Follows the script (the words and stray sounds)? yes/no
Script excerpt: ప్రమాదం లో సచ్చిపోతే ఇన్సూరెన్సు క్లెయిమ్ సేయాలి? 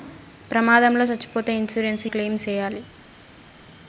yes